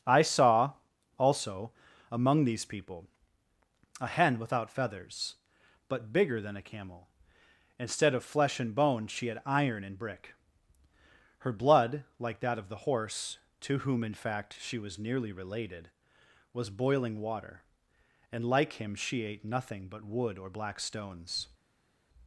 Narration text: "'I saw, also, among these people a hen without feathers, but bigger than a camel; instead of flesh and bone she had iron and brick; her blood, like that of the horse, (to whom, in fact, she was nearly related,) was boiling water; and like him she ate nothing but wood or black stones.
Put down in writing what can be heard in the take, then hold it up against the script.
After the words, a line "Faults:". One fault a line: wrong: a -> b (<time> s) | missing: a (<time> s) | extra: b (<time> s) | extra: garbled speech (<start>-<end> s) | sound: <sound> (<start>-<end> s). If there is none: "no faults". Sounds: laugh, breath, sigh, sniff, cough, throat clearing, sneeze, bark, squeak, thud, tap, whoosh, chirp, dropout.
"'I saw, also, among these people a hen without feathers, but bigger than a camel; instead of flesh and bone she had iron and brick; her blood, like that of the horse, (to whom, in fact, she was nearly related,) was boiling water; and like him she ate nothing but wood or black stones.
Faults:
no faults